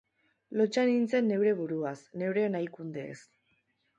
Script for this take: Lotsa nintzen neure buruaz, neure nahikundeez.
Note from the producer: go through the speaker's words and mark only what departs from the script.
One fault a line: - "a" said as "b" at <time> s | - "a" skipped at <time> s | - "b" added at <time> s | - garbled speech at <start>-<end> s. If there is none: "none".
none